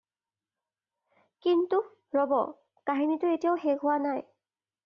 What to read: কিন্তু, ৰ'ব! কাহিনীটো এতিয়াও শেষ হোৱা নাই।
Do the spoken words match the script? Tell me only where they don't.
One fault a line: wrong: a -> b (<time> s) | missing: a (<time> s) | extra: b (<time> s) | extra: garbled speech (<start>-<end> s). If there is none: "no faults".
no faults